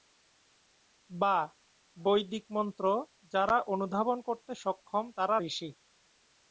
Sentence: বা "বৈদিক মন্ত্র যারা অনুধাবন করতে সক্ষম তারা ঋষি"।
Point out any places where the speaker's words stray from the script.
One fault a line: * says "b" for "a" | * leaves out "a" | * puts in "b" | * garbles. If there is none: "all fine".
all fine